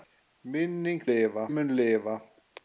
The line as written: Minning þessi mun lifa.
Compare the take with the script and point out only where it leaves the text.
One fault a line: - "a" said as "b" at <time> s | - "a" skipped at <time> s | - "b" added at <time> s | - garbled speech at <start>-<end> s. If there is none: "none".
- "þessi" said as "lifa" at 1.1 s